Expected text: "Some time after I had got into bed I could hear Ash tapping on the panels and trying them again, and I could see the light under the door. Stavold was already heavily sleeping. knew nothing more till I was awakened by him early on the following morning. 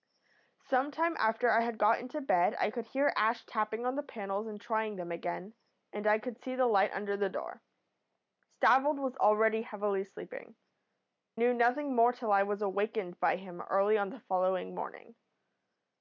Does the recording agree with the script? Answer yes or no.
yes